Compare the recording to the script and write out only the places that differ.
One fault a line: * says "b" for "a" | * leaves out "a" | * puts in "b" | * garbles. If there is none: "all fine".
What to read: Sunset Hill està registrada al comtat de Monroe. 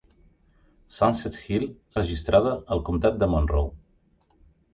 * leaves out "està"